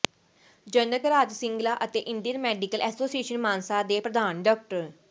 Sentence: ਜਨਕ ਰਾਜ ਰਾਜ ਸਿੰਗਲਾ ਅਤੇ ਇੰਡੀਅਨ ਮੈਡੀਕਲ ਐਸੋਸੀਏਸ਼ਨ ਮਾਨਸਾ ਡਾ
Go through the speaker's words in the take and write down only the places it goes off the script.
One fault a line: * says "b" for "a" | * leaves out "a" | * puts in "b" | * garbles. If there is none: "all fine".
* leaves out "ਰਾਜ"
* puts in "ਦੇ ਪ੍ਰਧਾਨ"